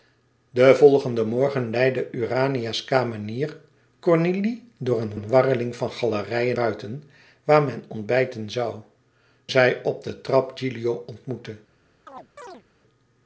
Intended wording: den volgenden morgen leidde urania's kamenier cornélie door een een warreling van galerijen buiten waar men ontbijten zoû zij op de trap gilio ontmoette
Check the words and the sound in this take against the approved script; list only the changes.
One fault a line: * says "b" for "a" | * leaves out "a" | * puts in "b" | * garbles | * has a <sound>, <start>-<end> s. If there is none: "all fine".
* has a chirp, 12.1-12.6 s